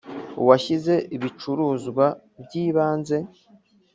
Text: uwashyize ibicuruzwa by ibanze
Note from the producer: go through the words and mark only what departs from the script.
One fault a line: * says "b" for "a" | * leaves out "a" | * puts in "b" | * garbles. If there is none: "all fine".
all fine